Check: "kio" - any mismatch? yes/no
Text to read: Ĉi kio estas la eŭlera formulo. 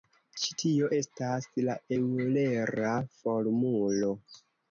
yes